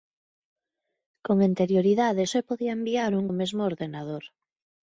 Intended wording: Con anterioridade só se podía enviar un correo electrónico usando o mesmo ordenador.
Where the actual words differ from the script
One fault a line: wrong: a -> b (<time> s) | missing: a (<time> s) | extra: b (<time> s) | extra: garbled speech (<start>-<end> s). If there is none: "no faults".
missing: só (2.2 s)
missing: correo electrónico usando (3.3 s)